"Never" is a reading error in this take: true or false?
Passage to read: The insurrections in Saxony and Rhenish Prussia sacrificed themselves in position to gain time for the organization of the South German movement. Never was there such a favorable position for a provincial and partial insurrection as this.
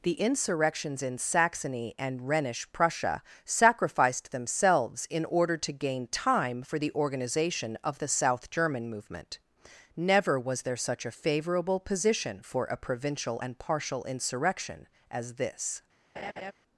false